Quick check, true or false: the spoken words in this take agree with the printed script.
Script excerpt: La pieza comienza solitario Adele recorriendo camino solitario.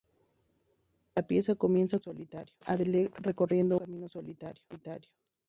true